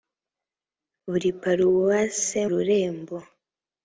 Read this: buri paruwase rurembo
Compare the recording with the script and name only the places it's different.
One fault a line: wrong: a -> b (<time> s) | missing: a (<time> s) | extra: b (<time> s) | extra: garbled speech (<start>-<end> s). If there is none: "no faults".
no faults